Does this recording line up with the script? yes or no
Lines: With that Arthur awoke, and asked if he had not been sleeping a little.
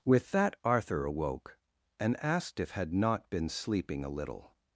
no